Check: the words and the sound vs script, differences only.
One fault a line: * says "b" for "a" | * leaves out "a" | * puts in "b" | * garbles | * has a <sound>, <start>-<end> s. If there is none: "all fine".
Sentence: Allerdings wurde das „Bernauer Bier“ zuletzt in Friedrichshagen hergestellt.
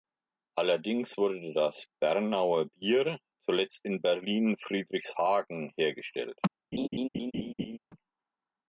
* puts in "Berlin"
* has a laugh, 6.7-7.8 s